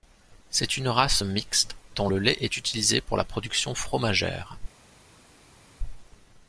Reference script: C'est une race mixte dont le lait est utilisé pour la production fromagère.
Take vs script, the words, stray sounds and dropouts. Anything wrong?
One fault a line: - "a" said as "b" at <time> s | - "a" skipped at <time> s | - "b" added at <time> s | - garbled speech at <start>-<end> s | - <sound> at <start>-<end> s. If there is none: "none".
none